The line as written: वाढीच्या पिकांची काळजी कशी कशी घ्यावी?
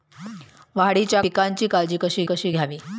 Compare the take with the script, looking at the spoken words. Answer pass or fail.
pass